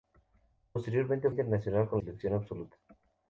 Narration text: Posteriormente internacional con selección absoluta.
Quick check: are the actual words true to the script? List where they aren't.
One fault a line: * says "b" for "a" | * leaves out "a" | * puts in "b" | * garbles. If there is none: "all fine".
all fine